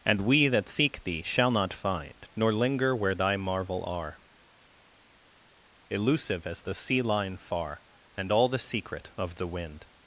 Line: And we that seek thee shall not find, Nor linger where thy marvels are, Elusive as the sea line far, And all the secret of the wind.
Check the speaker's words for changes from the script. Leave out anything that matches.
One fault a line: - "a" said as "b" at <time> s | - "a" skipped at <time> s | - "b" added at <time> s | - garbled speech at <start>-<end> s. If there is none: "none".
- "marvels" said as "marvel" at 3.4 s